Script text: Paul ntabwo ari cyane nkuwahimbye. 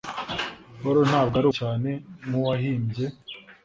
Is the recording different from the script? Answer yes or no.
no